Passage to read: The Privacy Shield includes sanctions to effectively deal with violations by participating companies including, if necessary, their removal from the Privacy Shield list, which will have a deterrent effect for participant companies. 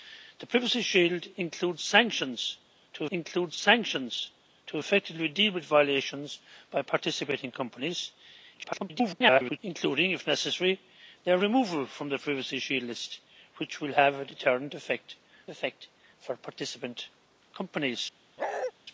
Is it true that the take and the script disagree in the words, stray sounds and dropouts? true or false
true